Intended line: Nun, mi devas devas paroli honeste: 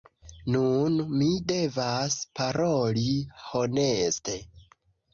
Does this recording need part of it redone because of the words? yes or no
yes